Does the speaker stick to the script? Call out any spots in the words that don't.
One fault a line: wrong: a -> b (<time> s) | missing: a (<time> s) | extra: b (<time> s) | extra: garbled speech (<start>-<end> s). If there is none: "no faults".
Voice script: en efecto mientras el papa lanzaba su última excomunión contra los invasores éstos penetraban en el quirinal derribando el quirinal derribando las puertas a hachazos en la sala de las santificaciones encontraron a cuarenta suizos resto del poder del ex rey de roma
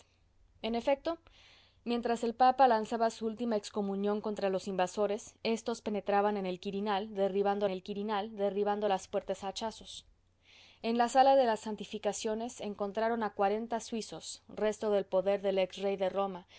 no faults